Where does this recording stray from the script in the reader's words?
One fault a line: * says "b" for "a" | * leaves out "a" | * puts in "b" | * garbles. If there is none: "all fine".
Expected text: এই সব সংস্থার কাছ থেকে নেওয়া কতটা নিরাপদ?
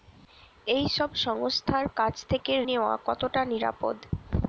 all fine